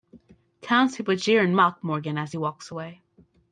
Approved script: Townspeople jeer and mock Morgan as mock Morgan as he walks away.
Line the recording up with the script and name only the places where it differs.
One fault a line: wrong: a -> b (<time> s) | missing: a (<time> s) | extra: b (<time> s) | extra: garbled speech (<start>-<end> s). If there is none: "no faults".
missing: mock Morgan as (2.3 s)